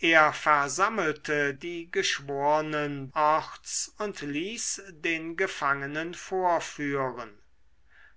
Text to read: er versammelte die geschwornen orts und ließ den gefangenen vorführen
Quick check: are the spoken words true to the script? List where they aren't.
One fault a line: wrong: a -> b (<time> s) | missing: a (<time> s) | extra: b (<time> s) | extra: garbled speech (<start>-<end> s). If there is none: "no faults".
no faults